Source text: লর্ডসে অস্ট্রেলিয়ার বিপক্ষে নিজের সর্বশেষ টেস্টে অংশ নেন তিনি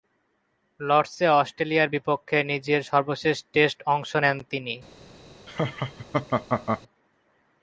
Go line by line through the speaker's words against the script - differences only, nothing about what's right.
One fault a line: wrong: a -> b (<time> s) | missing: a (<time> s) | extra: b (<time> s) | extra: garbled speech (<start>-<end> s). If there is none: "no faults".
no faults